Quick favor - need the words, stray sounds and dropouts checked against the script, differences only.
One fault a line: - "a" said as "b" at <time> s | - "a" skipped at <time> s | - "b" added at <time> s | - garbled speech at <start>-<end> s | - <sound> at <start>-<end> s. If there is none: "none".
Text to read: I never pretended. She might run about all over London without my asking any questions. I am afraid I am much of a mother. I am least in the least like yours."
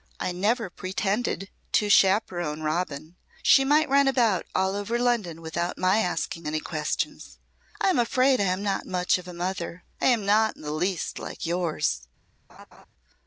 - "to chaperon Robin" added at 1.7 s
- "not" added at 8.6 s
- "least" said as "not" at 10.3 s
- laugh at 12.5-12.9 s